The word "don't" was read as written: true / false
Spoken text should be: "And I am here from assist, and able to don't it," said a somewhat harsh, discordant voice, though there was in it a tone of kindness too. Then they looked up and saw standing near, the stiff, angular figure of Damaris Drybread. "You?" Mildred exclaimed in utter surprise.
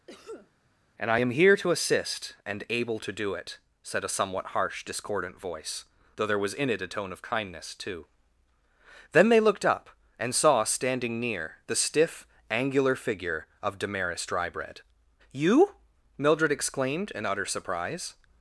false